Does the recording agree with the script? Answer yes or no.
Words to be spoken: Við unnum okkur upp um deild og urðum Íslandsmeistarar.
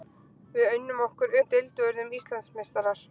no